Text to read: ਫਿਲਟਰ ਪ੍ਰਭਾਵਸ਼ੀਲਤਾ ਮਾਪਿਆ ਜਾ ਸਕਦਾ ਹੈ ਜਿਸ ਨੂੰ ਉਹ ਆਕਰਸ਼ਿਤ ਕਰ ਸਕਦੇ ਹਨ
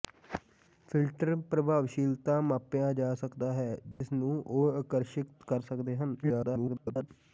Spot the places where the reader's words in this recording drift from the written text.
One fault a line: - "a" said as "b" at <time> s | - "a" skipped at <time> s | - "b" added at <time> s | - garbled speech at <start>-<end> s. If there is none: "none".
- garbled speech at 6.2-7.1 s